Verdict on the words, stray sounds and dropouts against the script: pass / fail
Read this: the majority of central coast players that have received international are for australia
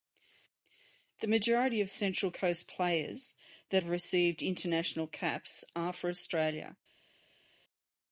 fail